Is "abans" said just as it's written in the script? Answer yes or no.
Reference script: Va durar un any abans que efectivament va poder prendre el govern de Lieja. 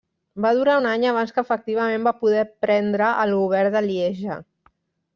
yes